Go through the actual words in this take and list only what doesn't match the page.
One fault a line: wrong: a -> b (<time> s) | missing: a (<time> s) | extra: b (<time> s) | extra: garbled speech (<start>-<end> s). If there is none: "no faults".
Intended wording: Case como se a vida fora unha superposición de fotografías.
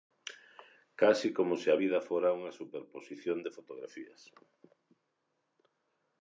no faults